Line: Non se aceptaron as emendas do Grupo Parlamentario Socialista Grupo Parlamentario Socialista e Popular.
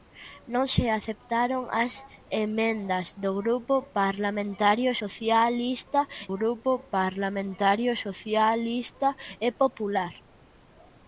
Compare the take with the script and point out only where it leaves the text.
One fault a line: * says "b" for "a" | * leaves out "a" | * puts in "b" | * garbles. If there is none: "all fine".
all fine